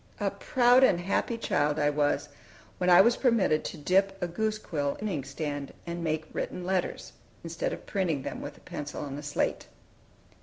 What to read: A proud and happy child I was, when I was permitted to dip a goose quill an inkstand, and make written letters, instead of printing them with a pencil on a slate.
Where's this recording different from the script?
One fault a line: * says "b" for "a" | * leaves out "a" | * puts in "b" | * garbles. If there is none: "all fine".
all fine